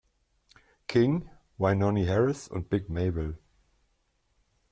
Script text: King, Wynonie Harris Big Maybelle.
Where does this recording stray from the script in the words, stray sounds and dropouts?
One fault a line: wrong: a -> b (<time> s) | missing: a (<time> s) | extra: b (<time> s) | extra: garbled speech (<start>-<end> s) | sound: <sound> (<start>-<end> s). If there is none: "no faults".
extra: und (2.5 s)